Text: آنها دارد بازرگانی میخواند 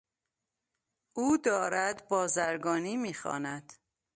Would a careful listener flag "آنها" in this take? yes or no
yes